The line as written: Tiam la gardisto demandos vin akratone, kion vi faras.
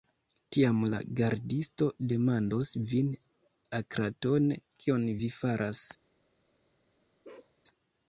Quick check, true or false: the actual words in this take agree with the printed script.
true